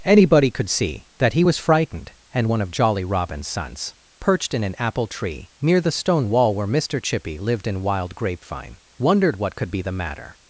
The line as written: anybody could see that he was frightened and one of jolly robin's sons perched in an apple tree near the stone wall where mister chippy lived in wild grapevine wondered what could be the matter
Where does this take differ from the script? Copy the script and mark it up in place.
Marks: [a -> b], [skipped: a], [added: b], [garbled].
anybody could see that he was frightened and one of jolly robin's sons perched in an apple tree near the stone wall where mister chippy lived in wild grapevine wondered what could be the matter